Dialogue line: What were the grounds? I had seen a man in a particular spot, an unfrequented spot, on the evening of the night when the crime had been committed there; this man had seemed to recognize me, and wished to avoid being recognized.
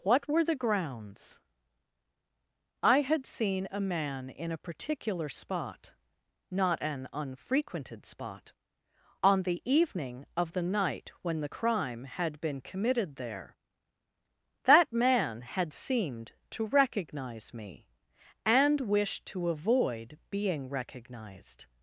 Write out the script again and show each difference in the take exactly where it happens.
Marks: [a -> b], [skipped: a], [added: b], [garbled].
What were the grounds? I had seen a man in a particular spot, [added: not] an unfrequented spot, on the evening of the night when the crime had been committed there; [this -> that] man had seemed to recognize me, and wished to avoid being recognized.